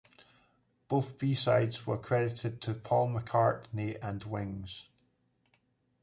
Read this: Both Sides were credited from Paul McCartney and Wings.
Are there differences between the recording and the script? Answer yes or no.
yes